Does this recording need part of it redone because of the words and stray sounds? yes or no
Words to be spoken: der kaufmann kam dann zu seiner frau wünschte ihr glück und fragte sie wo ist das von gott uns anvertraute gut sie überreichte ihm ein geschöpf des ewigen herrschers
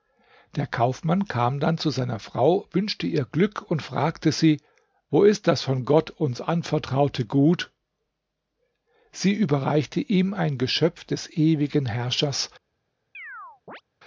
yes